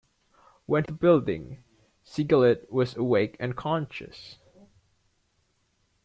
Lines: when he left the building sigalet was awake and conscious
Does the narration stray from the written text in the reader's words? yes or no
yes